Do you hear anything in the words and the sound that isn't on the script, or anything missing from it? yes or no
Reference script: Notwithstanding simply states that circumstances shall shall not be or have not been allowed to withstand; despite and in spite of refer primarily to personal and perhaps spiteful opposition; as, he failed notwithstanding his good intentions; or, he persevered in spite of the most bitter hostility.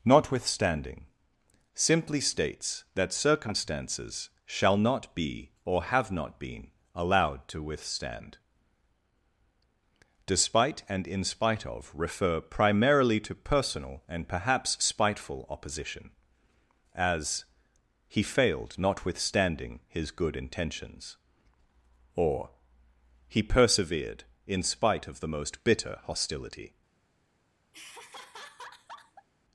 yes